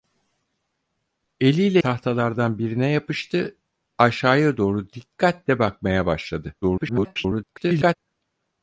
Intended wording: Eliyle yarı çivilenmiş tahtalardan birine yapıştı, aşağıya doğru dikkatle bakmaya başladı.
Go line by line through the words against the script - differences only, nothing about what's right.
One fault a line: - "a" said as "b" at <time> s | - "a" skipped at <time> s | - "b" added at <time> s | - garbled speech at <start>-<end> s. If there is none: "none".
- "yarı çivilenmiş" skipped at 1.8 s
- garbled speech at 6.6-8.0 s